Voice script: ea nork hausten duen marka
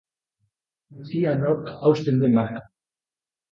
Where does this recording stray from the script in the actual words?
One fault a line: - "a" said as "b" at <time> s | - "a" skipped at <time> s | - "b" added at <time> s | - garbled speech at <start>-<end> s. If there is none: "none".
none